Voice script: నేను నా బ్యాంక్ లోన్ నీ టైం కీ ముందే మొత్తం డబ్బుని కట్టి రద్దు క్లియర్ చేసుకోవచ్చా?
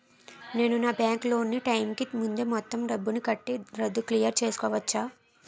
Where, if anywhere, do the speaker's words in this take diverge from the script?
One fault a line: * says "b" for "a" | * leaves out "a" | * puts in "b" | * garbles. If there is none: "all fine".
all fine